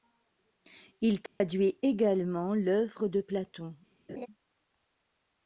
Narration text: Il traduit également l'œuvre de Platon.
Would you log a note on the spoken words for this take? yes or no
no